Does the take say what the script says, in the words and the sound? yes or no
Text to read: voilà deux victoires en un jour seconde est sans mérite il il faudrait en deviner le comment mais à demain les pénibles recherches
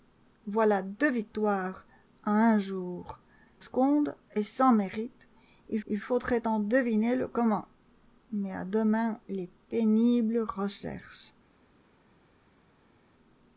yes